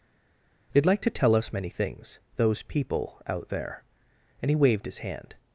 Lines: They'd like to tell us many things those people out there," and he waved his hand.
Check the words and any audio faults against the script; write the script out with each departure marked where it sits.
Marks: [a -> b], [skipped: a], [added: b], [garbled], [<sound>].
They'd like to tell us many things those people out there," and he waved his hand.